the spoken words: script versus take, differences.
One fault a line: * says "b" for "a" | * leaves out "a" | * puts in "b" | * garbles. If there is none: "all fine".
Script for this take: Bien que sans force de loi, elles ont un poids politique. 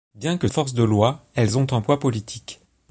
* leaves out "sans"